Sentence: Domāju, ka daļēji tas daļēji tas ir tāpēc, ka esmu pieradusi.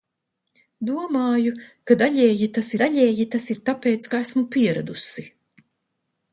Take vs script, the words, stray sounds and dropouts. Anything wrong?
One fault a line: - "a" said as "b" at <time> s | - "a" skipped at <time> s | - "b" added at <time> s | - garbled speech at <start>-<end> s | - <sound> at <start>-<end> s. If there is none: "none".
none